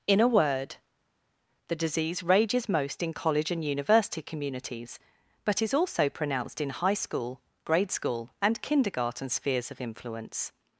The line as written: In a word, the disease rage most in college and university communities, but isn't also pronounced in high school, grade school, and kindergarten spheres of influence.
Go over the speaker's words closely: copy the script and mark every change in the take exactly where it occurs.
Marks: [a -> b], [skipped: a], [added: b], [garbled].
In a word, the disease [rage -> rages] most in college and university communities, but [isn't -> is] also pronounced in high school, grade school, and kindergarten spheres of influence.